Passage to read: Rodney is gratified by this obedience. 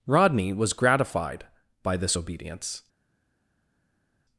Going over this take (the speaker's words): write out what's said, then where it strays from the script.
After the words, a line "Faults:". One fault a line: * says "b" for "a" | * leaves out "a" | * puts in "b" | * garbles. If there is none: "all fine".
Rodney was gratified by this obedience.
Faults:
* says "was" for "is"